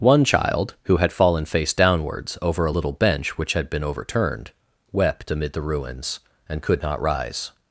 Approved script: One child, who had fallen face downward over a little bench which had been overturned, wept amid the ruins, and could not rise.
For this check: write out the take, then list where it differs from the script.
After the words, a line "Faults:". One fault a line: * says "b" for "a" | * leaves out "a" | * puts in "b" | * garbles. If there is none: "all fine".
One child, who had fallen face downwards over a little bench which had been overturned, wept amid the ruins, and could not rise.
Faults:
* says "downwards" for "downward"